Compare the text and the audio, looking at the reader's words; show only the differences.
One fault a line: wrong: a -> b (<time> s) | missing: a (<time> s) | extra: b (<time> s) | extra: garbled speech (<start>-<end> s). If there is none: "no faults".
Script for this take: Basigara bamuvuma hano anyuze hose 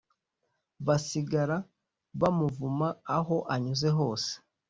wrong: hano -> aho (3.2 s)